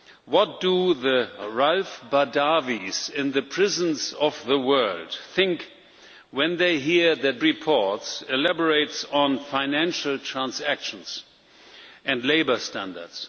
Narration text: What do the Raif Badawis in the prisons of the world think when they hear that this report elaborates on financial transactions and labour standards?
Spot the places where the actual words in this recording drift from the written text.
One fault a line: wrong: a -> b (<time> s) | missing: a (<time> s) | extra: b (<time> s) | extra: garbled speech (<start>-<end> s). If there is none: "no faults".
missing: this (7.4 s)